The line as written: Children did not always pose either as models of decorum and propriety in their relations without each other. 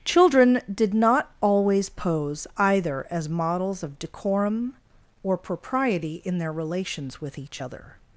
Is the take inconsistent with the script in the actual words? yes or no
yes